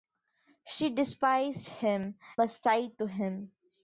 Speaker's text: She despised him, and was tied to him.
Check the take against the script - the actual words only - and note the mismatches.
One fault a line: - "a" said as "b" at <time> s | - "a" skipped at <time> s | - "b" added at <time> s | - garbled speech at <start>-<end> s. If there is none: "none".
- "and" skipped at 2.2 s